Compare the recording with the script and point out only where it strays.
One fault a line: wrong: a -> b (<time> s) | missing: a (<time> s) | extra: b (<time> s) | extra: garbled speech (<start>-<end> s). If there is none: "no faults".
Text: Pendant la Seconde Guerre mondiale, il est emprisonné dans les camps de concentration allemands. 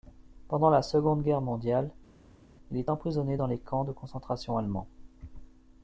no faults